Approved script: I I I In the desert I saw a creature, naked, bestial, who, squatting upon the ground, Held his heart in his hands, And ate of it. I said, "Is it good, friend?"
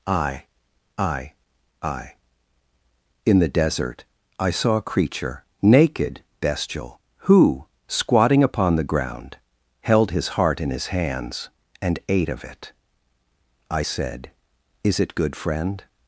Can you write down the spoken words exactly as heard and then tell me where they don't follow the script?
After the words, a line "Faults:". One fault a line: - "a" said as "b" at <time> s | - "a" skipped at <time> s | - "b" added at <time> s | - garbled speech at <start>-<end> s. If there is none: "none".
I I I In the desert I saw a creature, naked, bestial, who, squatting upon the ground, Held his heart in his hands, And ate of it. I said, "Is it good, friend?"
Faults:
none